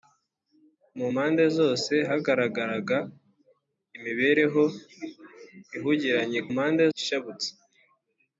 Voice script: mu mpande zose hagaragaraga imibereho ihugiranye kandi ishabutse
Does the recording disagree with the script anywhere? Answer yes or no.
yes